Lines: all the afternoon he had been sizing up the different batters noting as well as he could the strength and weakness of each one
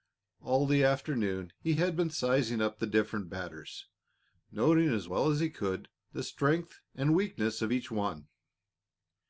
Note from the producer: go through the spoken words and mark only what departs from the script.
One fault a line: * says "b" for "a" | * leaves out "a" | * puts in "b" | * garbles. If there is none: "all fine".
all fine